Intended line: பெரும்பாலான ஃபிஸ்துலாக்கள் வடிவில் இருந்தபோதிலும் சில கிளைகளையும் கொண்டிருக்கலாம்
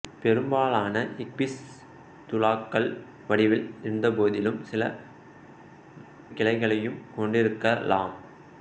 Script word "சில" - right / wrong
right